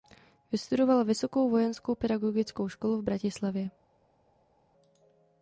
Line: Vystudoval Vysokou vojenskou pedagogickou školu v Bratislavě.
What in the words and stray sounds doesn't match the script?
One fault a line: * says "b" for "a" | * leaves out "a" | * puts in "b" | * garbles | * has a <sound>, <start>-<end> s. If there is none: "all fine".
all fine